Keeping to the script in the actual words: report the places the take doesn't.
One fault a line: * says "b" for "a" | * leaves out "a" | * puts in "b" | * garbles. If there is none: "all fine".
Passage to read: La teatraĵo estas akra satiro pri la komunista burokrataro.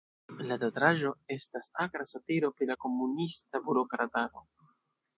all fine